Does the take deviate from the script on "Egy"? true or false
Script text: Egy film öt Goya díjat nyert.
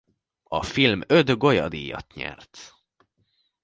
true